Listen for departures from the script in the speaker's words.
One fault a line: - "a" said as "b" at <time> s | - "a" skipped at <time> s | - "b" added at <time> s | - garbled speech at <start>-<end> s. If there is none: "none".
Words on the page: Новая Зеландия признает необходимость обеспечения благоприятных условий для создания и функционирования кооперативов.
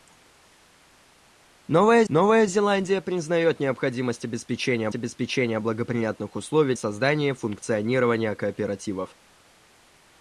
- "новая" added at 2.1 s
- "обеспечения" added at 4.9 s
- "для" skipped at 6.8 s